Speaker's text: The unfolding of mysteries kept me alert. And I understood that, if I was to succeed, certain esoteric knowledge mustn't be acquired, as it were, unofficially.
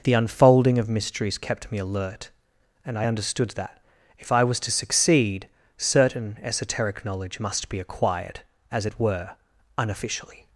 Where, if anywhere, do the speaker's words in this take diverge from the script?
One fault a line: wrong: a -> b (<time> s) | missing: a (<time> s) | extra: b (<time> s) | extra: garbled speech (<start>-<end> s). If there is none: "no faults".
wrong: mustn't -> must (7.4 s)